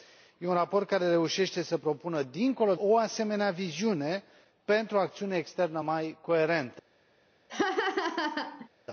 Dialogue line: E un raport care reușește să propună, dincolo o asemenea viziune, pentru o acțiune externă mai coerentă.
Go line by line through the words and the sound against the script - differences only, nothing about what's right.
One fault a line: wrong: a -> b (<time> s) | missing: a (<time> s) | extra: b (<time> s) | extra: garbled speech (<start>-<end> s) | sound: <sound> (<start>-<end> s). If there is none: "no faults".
sound: laugh (7.5-8.7 s)